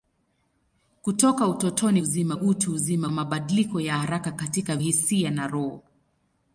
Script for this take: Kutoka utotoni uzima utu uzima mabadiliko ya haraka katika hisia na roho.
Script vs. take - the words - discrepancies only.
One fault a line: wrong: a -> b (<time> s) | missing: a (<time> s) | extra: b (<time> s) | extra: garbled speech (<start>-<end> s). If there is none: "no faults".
no faults